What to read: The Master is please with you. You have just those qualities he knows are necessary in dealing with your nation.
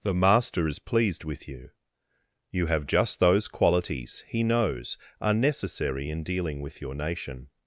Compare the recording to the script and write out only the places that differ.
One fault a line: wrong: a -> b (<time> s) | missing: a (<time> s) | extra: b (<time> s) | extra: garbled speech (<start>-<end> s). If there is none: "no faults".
wrong: please -> pleased (0.8 s)